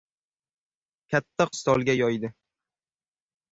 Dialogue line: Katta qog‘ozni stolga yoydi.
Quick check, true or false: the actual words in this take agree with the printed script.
false